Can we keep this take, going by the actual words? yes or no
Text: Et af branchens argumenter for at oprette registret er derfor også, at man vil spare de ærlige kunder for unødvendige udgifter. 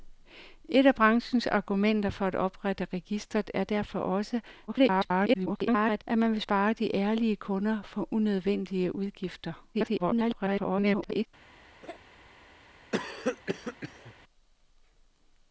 no